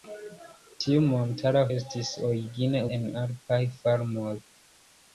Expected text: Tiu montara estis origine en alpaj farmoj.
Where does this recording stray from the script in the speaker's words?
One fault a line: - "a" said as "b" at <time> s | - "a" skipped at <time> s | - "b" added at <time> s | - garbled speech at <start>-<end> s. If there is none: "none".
none